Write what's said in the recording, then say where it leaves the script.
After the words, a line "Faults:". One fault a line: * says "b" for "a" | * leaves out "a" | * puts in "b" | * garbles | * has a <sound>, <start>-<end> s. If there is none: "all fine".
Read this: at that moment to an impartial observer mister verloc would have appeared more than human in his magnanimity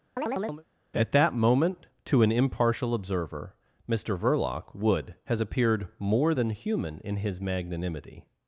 at that moment to an impartial observer mister verloc would has appeared more than human in his magnanimity
Faults:
* has a chirp, 0.2-0.7 s
* says "has" for "have"